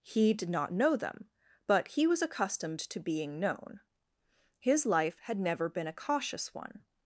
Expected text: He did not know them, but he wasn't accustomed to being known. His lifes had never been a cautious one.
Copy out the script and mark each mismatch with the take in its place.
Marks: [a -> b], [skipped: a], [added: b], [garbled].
He did not know them, but he [wasn't -> was] accustomed to being known. His [lifes -> life] had never been a cautious one.